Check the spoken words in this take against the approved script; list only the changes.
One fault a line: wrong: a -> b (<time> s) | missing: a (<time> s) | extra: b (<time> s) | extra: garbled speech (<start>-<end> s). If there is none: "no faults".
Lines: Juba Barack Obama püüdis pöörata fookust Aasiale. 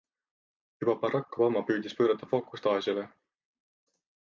no faults